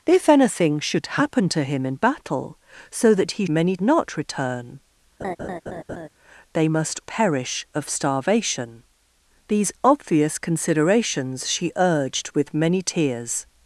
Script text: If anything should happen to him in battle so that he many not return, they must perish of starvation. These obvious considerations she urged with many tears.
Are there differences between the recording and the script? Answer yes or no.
no